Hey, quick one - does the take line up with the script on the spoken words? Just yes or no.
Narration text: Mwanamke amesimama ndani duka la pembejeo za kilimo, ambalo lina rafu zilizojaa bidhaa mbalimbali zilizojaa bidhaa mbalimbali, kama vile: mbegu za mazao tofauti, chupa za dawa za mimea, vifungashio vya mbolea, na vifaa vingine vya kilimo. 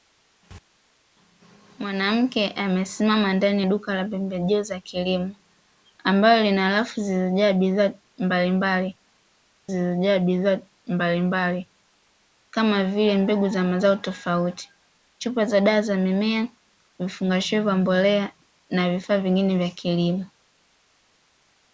yes